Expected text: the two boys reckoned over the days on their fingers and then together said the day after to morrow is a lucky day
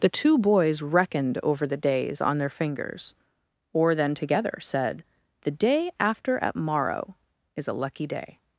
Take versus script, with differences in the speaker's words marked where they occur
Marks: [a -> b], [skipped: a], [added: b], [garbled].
the two boys reckoned over the days on their fingers [and -> or] then together said the day after [to -> at] morrow is a lucky day